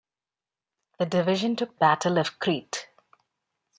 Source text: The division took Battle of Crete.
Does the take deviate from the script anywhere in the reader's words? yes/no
no